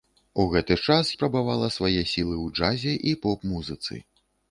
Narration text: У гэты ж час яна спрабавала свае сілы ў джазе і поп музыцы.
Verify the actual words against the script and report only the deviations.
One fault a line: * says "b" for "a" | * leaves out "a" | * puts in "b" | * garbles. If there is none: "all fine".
* leaves out "яна"